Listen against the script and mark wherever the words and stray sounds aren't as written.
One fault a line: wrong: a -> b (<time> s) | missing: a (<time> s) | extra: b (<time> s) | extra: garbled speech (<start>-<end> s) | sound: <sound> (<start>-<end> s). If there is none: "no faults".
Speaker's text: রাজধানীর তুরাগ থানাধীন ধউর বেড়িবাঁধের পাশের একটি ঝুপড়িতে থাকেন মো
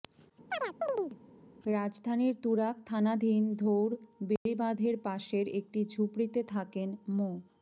sound: chirp (0.5-1.2 s)
sound: dropout (4.4-4.5 s)